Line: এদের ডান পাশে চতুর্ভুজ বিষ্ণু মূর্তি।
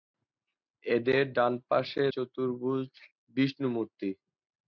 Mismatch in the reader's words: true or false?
false